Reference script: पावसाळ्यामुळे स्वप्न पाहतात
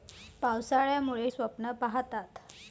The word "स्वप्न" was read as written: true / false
true